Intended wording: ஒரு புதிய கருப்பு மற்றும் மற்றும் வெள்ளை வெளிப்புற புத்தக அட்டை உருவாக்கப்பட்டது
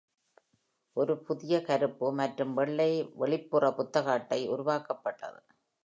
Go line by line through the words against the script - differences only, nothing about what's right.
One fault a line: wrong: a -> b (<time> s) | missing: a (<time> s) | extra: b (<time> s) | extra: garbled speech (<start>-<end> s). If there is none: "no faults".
missing: மற்றும் (2.5 s)